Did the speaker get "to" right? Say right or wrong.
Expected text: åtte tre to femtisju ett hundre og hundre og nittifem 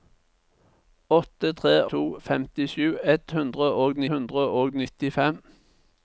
right